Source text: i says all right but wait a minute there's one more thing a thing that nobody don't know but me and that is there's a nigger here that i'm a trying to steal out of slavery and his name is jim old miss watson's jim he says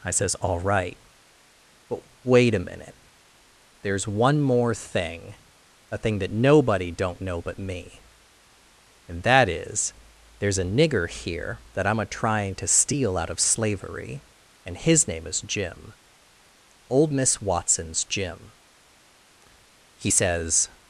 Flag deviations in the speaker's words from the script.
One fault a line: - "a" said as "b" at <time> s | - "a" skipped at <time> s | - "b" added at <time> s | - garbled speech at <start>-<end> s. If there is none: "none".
none